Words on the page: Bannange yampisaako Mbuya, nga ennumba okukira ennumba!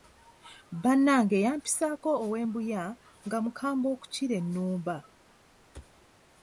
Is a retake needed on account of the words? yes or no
yes